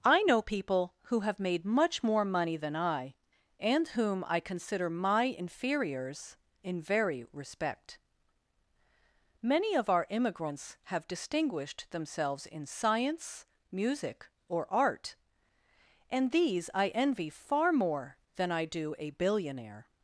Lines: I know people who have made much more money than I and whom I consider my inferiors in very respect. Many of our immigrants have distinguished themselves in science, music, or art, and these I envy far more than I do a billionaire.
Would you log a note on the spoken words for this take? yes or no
no